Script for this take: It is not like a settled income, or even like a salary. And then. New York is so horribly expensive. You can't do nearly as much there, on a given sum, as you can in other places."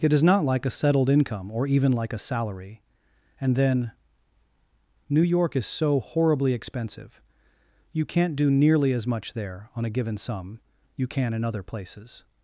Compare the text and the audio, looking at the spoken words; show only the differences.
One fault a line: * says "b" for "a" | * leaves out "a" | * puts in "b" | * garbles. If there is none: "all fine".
* leaves out "as"